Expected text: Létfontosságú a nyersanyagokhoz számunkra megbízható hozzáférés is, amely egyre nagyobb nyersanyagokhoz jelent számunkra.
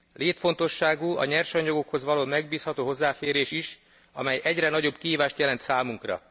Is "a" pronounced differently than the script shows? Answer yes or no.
no